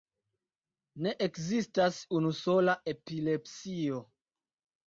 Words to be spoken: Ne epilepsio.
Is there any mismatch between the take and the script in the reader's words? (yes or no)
yes